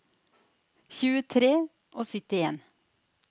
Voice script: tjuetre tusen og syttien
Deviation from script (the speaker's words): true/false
true